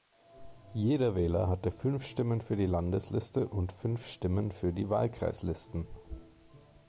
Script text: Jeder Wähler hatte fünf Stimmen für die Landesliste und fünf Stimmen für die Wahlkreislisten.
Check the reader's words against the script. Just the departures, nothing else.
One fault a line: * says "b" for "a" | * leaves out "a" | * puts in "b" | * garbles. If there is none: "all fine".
all fine